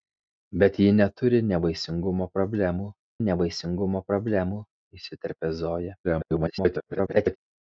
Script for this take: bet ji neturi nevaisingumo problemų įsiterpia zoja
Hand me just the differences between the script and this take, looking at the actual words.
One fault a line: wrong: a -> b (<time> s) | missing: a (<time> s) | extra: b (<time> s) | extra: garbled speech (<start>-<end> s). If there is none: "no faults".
extra: nevaisingumo problemų (3.3 s)
extra: garbled speech (6.0-7.4 s)